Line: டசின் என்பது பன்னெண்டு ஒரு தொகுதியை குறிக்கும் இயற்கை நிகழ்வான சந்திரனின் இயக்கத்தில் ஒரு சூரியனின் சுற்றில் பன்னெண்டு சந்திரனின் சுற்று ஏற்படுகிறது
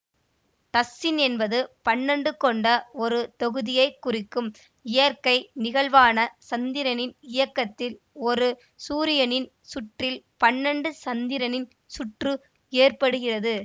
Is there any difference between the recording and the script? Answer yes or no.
yes